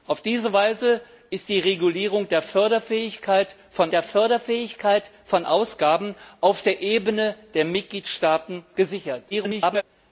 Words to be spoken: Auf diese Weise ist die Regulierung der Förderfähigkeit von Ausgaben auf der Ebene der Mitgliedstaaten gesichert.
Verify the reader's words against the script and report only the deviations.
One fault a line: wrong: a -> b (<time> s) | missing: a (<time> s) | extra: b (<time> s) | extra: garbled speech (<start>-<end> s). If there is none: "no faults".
extra: der Förderfähigkeit von (3.9 s)
extra: garbled speech (9.3-9.8 s)